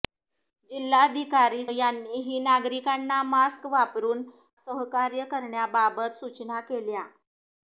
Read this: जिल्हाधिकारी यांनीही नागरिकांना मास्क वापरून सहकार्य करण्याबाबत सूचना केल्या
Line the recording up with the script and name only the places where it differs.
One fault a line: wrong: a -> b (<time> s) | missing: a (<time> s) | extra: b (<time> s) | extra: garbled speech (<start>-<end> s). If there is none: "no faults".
no faults